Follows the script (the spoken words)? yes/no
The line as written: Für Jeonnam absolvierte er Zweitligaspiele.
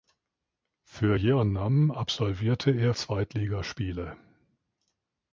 yes